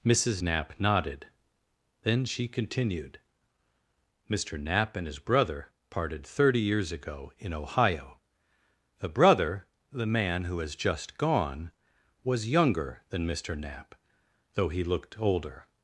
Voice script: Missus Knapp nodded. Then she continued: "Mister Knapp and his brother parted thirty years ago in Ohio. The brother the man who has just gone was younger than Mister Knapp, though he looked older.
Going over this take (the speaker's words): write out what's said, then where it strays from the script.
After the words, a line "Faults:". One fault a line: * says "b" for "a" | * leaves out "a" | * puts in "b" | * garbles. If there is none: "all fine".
Missus Knapp nodded. Then she continued: "Mister Knapp and his brother parted thirty years ago in Ohio. The brother the man who has just gone was younger than Mister Knapp, though he looked older.
Faults:
all fine